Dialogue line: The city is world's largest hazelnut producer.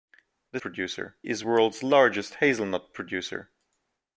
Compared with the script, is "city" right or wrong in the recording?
wrong